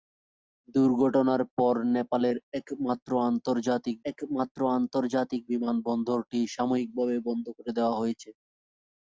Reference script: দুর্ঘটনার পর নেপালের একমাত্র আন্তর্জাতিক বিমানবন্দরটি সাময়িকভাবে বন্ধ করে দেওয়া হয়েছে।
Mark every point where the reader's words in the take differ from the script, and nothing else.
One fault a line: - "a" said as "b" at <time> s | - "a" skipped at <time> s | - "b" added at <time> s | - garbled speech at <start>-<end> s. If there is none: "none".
- "একমাত্র আন্তর্জাতিক" added at 4.1 s